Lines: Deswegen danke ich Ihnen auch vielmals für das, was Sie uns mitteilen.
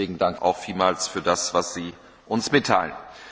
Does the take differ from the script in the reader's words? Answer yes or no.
yes